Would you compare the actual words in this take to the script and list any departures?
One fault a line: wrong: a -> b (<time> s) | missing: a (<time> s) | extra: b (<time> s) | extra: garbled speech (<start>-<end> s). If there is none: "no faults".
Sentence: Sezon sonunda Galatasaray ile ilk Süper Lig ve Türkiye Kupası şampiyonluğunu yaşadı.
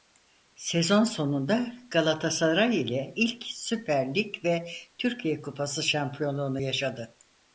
no faults